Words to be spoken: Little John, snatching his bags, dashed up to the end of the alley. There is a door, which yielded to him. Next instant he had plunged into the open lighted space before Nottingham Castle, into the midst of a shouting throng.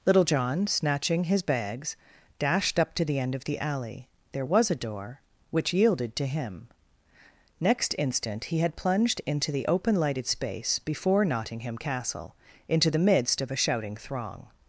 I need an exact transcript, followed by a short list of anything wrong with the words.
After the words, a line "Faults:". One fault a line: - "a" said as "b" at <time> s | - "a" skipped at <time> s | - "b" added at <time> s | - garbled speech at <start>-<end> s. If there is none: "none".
Little John, snatching his bags, dashed up to the end of the alley. There was a door, which yielded to him. Next instant he had plunged into the open lighted space before Nottingham Castle, into the midst of a shouting throng.
Faults:
- "is" said as "was" at 4.5 s